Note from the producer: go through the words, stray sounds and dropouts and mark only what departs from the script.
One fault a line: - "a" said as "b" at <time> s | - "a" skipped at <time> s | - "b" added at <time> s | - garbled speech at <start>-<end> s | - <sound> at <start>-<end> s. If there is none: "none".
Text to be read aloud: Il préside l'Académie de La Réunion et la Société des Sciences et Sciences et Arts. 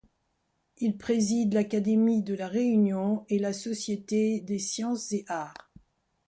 - "Sciences et" skipped at 5.2 s